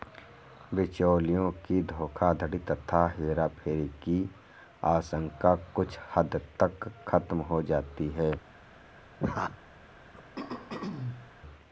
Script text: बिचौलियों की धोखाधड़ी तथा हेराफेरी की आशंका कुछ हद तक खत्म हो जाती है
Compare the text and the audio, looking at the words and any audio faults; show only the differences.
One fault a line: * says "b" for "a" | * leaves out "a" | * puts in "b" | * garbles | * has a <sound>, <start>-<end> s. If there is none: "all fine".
* has a laugh, 9.2-9.6 s
* has a throat clearing, 10.1-11.3 s